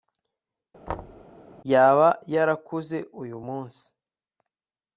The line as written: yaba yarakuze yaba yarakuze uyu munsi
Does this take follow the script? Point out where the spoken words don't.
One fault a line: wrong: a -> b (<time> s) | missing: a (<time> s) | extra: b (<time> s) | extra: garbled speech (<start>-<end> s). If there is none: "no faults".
missing: yaba yarakuze (3.0 s)